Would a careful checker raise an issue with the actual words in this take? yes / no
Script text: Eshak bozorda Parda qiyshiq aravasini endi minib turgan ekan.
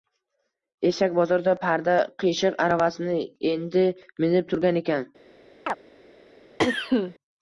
no